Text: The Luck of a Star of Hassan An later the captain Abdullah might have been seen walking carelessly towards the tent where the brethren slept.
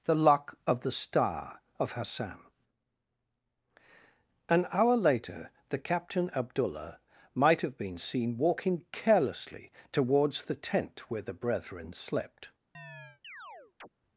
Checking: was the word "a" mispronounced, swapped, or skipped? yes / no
yes